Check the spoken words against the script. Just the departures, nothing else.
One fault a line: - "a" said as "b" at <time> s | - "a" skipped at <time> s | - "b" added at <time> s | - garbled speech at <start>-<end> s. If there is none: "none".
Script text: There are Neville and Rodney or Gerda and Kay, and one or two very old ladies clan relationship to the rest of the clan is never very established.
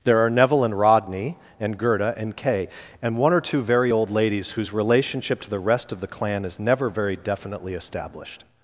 - "or" said as "and" at 1.6 s
- "clan" said as "whose" at 4.5 s
- "definitely" added at 7.2 s